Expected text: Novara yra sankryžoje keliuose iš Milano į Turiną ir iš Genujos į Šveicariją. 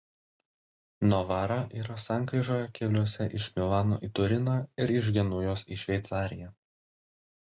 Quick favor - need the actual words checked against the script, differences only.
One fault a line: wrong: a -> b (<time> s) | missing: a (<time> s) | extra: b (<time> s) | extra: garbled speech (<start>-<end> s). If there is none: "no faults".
no faults